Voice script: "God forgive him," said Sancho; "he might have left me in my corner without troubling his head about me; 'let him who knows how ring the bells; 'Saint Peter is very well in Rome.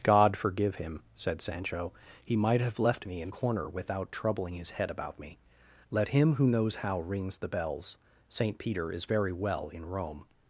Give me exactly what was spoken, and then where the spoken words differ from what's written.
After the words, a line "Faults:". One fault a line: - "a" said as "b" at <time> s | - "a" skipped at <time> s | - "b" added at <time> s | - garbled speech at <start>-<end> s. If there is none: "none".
"God forgive him," said Sancho; "he might have left me in corner without troubling his head about me; 'let him who knows how rings the bells; 'Saint Peter is very well in Rome.
Faults:
- "my" skipped at 3.3 s
- "ring" said as "rings" at 7.0 s